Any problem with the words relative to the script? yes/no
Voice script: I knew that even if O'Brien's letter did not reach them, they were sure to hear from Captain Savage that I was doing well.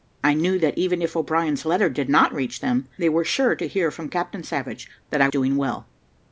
yes